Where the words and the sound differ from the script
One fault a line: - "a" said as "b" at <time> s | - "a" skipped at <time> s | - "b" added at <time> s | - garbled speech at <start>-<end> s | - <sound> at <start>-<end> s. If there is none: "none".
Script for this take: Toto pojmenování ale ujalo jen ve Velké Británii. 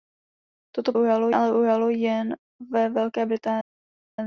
- "pojmenování" said as "ujalo" at 1.0 s